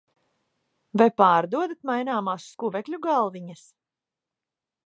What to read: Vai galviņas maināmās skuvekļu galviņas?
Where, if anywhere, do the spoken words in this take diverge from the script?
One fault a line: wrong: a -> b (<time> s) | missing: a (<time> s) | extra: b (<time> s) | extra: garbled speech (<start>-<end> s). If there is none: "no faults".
wrong: galviņas -> pārdodat (1.2 s)